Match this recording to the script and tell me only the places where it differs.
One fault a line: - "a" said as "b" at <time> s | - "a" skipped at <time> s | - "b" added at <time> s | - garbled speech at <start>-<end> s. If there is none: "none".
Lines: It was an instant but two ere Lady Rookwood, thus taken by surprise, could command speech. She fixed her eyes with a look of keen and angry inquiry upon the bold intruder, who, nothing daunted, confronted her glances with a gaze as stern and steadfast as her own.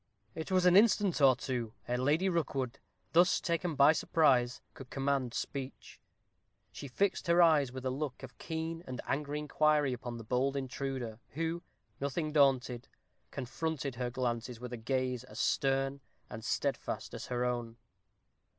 - "but" said as "or" at 1.2 s